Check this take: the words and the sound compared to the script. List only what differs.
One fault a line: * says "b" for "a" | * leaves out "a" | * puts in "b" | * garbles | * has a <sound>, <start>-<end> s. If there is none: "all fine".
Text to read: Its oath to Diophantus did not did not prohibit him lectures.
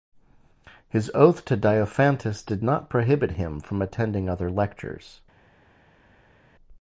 * says "His" for "Its"
* says "prohibit him from attending other" for "did not prohibit him"